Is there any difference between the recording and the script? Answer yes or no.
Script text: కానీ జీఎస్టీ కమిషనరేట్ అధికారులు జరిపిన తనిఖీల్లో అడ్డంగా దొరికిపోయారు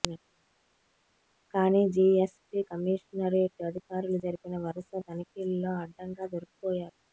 yes